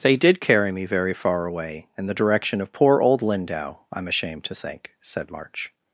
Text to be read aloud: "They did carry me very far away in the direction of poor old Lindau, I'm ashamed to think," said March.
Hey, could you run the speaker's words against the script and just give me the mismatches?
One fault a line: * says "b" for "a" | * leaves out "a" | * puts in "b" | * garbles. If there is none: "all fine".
all fine